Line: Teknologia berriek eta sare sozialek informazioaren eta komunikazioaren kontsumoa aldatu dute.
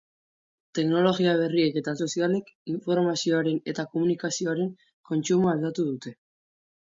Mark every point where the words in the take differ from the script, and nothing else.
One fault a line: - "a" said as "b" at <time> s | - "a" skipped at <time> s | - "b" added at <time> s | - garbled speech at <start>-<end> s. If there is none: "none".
- "sare" skipped at 1.9 s